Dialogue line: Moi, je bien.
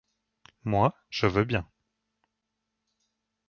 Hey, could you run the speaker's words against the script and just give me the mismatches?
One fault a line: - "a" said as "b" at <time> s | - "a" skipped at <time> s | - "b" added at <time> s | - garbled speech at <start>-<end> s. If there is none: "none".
- "veux" added at 1.3 s